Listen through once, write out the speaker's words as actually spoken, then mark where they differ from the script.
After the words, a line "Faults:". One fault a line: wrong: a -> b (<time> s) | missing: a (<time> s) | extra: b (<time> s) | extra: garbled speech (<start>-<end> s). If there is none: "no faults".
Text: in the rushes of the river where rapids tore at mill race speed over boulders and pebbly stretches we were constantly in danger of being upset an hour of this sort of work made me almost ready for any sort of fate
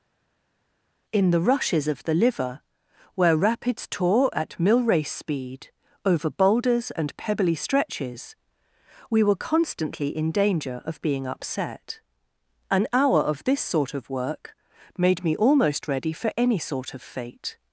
in the rushes of the liver where rapids tore at mill race speed over boulders and pebbly stretches we were constantly in danger of being upset an hour of this sort of work made me almost ready for any sort of fate
Faults:
wrong: river -> liver (2.1 s)